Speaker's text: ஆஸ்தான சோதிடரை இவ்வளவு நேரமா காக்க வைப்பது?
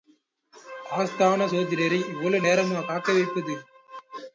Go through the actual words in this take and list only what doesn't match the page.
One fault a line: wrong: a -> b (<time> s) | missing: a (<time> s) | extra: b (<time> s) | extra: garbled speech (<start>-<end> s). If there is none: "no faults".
no faults